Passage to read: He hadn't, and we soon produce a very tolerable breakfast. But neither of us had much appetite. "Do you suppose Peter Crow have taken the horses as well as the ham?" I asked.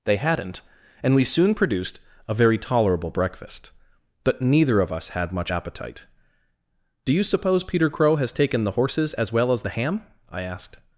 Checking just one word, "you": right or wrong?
right